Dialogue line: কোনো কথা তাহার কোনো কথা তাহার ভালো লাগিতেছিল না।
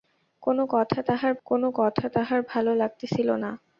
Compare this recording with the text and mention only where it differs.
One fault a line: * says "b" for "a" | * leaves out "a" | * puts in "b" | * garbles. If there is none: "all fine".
all fine